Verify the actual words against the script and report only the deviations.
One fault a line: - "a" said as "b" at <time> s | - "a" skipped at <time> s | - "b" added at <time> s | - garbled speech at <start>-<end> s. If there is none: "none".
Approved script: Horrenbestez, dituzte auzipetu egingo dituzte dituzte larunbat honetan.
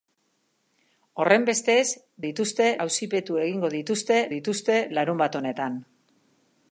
none